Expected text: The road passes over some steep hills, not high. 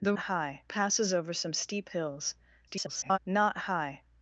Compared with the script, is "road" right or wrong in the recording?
wrong